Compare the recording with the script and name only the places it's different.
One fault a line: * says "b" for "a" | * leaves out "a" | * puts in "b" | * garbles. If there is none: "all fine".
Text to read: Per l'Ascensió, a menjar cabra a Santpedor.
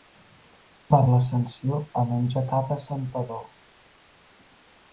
all fine